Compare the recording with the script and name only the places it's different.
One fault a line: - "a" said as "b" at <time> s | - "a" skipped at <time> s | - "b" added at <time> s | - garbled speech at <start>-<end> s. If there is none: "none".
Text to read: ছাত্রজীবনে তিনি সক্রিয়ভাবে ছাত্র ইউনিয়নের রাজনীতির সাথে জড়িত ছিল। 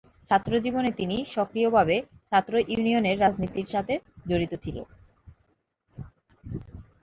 none